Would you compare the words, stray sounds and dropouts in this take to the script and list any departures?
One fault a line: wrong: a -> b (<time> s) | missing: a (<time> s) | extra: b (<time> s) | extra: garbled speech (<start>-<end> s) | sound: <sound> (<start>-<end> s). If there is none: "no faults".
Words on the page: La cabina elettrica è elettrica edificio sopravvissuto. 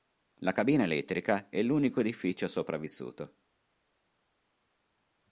wrong: elettrica -> l'unico (1.6 s)